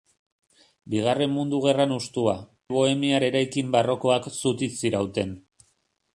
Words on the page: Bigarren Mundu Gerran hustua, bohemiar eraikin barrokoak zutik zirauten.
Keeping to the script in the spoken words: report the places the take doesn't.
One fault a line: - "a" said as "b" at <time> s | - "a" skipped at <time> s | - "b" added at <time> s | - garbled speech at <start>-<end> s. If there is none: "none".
none